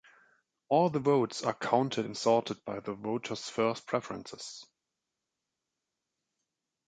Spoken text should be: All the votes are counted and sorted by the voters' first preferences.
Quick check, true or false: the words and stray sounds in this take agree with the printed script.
true